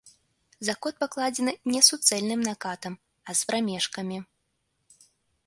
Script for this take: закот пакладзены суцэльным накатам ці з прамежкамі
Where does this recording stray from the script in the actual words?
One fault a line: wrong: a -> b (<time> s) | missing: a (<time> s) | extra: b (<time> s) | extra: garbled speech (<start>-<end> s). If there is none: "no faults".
extra: не (1.7 s)
wrong: ці -> а (3.3 s)